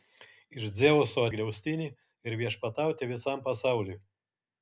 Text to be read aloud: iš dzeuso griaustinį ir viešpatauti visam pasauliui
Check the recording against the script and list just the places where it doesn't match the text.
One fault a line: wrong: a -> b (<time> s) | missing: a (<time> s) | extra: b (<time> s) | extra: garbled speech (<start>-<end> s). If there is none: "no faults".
no faults